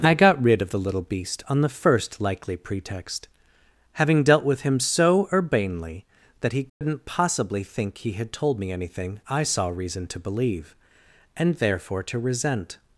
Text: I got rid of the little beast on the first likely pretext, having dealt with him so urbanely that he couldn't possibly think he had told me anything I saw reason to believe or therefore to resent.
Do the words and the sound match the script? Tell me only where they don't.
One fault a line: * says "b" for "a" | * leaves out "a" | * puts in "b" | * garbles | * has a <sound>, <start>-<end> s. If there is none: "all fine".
* has a dropout, 6.7-6.8 s
* says "and" for "or"